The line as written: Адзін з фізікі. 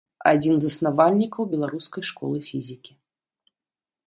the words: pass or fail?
fail